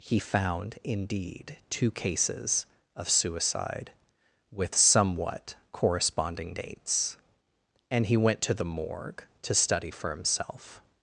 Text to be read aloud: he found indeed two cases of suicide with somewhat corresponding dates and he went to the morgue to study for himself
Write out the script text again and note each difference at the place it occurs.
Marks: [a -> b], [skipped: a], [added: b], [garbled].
he found indeed two cases of suicide with somewhat corresponding dates and he went to the morgue to study for himself